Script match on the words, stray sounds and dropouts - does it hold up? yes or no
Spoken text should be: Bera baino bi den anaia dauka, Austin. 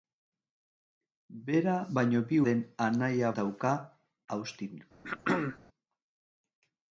no